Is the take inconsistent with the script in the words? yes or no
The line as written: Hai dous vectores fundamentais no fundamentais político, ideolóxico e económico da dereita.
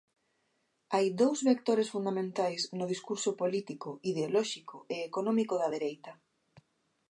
yes